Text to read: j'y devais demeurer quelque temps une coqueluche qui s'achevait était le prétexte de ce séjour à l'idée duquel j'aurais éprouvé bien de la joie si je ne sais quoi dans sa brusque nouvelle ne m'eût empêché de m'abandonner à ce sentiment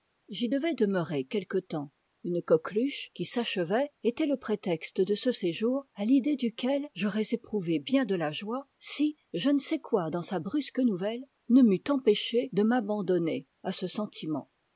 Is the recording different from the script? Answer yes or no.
no